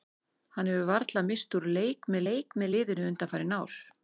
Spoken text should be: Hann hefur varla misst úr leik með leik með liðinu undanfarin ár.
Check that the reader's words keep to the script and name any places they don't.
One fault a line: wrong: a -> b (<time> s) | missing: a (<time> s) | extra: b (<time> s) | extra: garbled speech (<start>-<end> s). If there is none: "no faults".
no faults